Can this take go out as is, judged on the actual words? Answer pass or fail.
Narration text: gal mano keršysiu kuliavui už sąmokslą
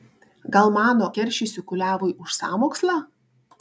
pass